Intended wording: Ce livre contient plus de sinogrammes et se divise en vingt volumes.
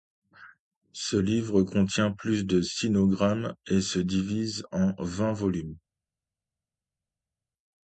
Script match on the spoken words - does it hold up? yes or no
yes